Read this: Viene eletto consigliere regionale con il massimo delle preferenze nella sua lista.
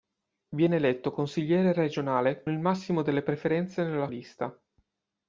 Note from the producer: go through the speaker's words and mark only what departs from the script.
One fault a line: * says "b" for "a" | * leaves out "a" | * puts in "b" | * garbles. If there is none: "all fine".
* leaves out "con"
* leaves out "sua"